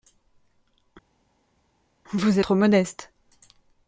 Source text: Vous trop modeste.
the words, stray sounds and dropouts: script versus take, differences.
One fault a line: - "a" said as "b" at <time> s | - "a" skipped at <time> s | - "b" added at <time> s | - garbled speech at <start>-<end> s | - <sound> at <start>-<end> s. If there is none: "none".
none